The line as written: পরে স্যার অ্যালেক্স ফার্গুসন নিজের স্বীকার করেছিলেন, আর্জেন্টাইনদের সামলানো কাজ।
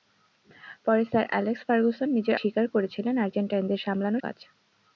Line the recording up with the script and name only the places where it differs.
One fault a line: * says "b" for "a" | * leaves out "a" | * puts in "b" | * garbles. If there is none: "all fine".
all fine